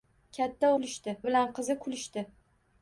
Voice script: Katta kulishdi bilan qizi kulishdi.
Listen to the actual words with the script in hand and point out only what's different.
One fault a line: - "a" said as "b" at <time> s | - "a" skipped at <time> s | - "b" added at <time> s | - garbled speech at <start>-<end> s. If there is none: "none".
none